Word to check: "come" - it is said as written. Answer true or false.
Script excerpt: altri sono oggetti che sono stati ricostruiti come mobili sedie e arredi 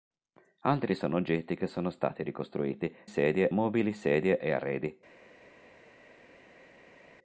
false